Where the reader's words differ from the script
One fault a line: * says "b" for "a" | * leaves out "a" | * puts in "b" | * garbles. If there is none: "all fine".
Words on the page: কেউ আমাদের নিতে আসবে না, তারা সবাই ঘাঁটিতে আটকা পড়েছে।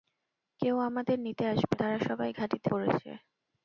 * leaves out "না"
* leaves out "আটকা"